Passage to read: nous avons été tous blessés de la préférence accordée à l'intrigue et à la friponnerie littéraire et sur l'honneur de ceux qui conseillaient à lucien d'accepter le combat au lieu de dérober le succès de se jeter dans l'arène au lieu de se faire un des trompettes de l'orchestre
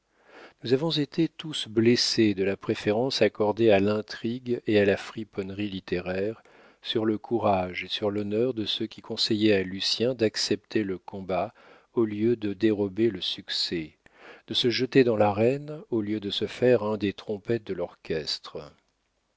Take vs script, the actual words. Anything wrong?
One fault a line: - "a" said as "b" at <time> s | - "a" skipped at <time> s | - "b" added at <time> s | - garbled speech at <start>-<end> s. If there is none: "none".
- "sur le courage" added at 6.8 s